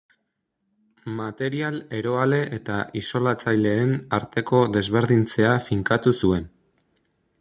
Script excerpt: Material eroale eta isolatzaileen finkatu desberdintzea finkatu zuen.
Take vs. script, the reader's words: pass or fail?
fail